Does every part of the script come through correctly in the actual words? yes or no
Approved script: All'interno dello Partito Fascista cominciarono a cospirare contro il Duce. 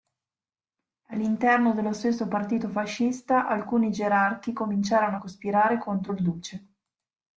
no